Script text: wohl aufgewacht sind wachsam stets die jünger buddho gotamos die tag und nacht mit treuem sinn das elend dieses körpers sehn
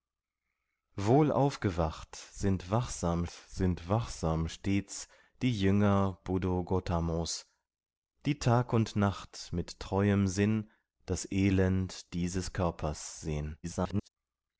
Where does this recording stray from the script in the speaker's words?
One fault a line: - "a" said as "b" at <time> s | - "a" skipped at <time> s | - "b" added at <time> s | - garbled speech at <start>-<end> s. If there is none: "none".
- "sind wachsam" added at 3.3 s
- garbled speech at 13.6-14.1 s